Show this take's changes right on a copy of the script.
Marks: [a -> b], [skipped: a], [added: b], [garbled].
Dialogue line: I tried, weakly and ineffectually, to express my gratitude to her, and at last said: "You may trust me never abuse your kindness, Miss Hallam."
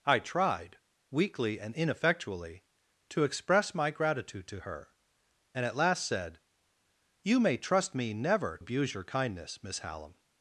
I tried, weakly and ineffectually, to express my gratitude to her, and at last said: "You may trust me never abuse your kindness, Miss Hallam."